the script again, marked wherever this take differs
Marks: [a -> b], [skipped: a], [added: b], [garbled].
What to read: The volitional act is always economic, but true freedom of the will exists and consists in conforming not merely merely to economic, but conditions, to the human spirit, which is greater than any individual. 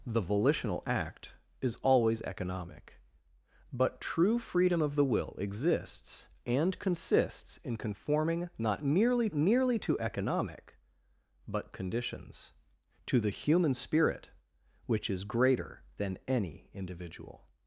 The volitional act is always economic, but true freedom of the will exists and consists in conforming not merely merely to economic, but conditions, to the human spirit, which is greater than any individual.